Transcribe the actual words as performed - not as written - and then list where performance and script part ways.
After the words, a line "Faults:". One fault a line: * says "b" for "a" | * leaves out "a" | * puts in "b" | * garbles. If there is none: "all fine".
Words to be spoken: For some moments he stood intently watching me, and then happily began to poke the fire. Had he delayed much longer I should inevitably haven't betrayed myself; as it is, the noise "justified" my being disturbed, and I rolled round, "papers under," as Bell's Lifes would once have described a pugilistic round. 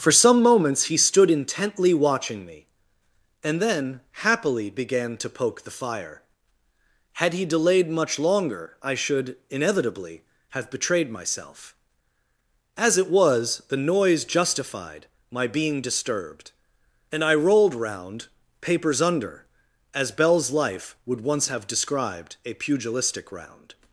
For some moments he stood intently watching me, and then happily began to poke the fire. Had he delayed much longer I should inevitably have betrayed myself; as it was, the noise "justified" my being disturbed, and I rolled round, "papers under," as Bell's Life would once have described a pugilistic round.
Faults:
* says "have" for "haven't"
* says "was" for "is"
* says "Life" for "Lifes"